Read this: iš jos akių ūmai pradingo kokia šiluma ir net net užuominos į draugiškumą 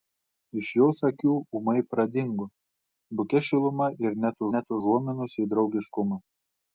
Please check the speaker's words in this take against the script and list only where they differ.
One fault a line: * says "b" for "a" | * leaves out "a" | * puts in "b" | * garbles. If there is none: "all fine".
all fine